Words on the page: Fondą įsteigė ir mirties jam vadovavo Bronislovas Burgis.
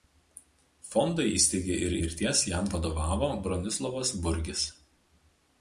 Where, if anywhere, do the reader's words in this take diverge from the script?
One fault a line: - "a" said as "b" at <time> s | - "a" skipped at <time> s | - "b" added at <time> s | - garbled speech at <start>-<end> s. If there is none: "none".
none